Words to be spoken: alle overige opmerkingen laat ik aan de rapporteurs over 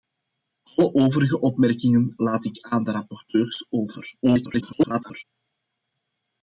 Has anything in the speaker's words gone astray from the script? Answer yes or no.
yes